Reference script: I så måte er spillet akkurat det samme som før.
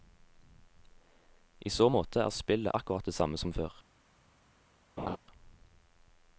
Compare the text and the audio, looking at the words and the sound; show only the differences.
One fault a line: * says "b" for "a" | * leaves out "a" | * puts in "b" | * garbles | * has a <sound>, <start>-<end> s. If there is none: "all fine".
* has a laugh, 5.0-5.2 s